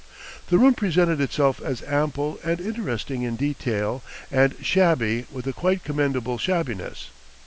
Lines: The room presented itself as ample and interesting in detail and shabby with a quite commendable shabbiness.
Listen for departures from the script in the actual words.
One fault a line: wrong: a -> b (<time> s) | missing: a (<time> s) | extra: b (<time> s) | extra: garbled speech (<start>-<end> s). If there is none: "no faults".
no faults